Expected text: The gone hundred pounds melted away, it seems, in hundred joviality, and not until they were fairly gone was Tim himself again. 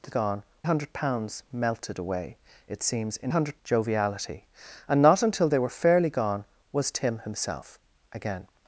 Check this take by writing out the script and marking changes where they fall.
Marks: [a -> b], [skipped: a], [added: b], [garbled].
The gone hundred pounds melted away, it seems, in hundred joviality, and not until they were fairly gone was Tim himself again.